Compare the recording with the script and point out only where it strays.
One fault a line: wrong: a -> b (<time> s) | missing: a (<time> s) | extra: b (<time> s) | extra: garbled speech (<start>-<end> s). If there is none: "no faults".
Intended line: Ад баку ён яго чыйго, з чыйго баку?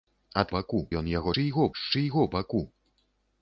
no faults